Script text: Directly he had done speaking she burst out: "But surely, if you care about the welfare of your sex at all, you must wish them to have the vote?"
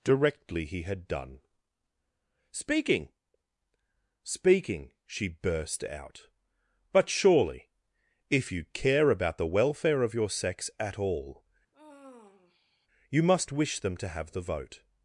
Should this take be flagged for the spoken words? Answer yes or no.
yes